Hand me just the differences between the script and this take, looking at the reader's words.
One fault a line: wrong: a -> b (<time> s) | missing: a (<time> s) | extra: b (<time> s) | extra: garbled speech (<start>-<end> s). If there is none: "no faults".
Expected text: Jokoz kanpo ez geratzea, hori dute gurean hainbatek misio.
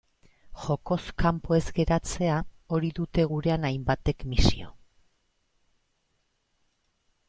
no faults